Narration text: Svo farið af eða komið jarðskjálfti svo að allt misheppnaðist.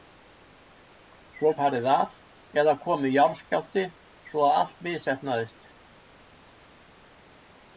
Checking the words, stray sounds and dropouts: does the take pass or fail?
pass